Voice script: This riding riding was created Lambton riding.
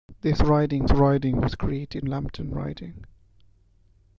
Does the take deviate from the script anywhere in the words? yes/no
no